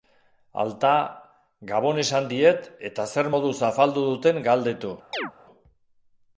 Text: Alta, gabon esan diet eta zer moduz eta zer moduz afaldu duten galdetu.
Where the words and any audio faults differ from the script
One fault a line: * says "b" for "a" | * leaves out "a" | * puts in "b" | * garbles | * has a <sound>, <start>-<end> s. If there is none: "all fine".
* leaves out "eta zer moduz"
* has a chirp, 5.1-5.3 s